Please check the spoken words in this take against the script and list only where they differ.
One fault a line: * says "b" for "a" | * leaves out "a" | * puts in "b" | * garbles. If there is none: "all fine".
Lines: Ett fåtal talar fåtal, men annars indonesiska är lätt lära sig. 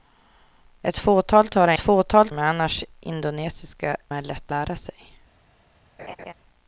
all fine